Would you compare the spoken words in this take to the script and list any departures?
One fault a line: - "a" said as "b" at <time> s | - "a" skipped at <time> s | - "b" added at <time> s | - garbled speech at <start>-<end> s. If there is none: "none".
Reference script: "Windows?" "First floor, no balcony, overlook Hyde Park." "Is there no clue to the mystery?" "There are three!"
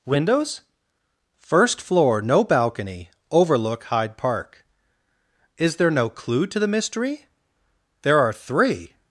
none